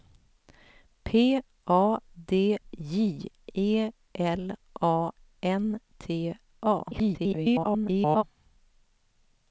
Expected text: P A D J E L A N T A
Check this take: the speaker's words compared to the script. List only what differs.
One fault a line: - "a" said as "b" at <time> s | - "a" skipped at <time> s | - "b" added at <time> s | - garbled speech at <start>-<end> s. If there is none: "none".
- garbled speech at 6.9-8.2 s